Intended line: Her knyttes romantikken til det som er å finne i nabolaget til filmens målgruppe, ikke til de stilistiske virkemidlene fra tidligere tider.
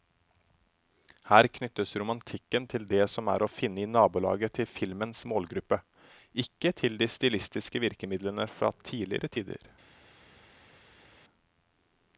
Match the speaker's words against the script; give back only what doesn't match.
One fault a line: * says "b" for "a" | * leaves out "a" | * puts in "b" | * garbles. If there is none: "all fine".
all fine